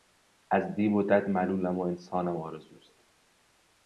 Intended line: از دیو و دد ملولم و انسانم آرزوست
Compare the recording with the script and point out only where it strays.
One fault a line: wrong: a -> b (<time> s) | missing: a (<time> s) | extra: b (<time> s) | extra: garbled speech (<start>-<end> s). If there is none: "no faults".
no faults